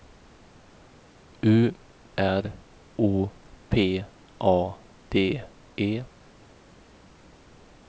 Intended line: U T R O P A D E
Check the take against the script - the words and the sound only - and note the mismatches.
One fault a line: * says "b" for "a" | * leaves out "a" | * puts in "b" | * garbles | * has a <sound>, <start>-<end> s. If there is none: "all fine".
* leaves out "T"